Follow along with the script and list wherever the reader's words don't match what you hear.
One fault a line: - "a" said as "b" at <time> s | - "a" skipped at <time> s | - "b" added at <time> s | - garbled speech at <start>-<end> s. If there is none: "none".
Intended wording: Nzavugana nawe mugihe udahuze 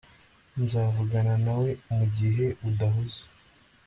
none